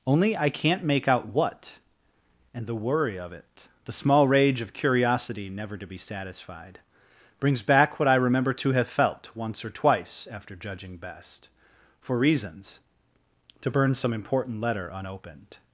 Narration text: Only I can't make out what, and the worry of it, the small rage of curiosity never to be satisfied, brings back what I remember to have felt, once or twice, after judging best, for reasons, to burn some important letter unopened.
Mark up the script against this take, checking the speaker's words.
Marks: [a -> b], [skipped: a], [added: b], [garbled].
Only I can't make out what, and the worry of it, the small rage of curiosity never to be satisfied, brings back what I remember to have felt, once or twice, after judging best, for reasons, to burn some important letter unopened.